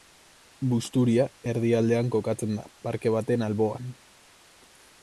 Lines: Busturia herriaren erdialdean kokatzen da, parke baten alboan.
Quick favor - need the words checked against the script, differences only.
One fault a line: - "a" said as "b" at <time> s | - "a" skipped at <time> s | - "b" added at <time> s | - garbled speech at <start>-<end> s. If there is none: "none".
- "herriaren" skipped at 1.3 s